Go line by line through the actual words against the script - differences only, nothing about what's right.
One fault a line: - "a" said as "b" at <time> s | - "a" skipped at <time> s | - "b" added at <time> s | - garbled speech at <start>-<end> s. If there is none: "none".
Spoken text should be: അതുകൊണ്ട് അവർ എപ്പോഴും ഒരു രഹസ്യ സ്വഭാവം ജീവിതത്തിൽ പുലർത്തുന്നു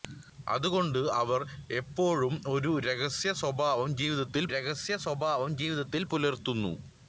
- "രഹസ്യ സ്വഭാവം ജീവിതത്തിൽ" added at 4.5 s